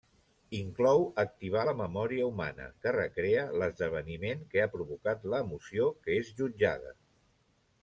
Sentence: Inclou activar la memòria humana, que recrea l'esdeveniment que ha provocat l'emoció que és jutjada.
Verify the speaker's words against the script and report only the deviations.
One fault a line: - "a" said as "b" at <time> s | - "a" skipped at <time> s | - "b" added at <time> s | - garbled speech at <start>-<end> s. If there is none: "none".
none